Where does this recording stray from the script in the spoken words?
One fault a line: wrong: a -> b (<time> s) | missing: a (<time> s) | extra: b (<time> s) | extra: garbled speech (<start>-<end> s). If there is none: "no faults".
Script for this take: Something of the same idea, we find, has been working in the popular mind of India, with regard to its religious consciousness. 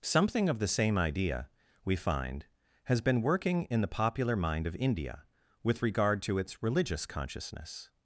no faults